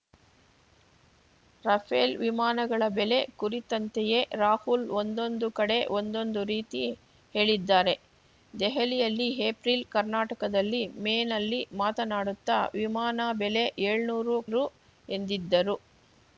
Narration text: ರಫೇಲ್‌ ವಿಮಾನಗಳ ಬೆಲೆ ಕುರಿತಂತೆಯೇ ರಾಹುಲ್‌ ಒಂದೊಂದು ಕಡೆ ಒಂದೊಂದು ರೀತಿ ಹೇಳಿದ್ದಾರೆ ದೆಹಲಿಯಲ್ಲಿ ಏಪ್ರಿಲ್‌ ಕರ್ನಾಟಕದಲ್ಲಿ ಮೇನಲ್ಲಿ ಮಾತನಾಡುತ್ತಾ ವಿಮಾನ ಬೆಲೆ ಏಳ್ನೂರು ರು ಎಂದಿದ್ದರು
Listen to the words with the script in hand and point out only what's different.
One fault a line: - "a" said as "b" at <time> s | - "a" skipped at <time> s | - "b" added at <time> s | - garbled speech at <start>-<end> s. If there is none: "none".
none